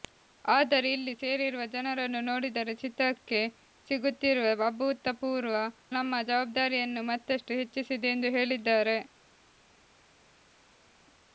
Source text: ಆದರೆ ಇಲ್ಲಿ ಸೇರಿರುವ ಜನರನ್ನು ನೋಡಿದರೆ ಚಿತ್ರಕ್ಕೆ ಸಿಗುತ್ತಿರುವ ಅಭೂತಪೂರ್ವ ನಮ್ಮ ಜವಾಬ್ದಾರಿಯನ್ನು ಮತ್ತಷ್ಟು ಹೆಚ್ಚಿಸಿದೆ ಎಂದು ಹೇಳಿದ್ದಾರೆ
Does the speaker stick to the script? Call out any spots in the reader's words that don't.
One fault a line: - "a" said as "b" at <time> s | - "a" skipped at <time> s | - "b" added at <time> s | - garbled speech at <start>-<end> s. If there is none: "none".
none